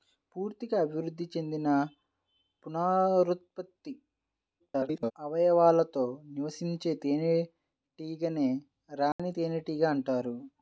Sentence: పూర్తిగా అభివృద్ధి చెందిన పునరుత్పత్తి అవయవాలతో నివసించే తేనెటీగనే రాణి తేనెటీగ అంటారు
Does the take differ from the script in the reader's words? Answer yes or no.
yes